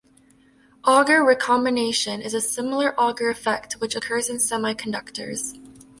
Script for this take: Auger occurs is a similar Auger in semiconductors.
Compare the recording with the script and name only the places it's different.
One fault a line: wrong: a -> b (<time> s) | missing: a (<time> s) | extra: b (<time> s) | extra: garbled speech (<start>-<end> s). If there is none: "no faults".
wrong: occurs -> recombination (1.2 s)
extra: effect which occurs (3.3 s)